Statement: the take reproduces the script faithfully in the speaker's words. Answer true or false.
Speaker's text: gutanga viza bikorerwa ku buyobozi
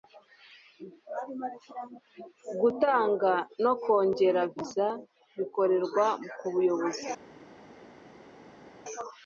false